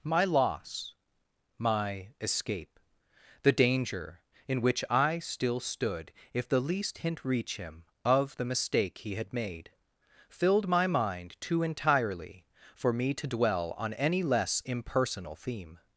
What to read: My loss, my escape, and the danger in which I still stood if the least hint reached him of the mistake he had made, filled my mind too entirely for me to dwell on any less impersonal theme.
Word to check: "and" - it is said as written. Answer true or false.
false